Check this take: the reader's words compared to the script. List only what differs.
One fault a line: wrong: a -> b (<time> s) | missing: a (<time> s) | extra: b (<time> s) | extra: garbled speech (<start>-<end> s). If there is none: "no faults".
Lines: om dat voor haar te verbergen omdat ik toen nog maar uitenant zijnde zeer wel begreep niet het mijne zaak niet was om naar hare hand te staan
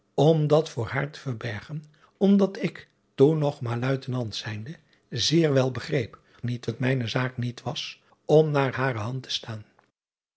no faults